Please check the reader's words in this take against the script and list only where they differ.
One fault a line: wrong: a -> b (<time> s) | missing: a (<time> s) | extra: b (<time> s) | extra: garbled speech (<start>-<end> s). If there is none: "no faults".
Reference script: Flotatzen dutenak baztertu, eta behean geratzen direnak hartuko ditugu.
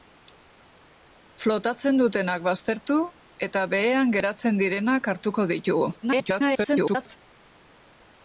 extra: garbled speech (6.0-7.2 s)